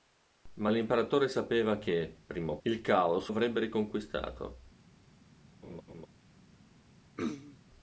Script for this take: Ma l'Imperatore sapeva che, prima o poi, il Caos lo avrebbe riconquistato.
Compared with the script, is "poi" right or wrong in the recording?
wrong